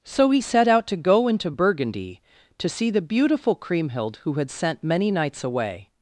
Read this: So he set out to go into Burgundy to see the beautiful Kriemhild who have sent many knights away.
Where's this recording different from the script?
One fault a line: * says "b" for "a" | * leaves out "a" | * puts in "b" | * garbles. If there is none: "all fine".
* says "had" for "have"